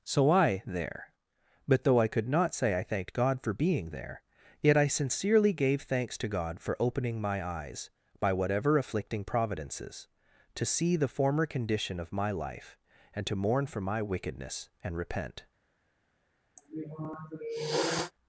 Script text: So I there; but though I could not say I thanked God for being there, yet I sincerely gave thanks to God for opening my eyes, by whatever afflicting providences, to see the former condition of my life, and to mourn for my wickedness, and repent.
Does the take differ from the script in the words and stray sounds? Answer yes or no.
yes